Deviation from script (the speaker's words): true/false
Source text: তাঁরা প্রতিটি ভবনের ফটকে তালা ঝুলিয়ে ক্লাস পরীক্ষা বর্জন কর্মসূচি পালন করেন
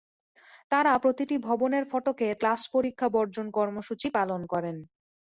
true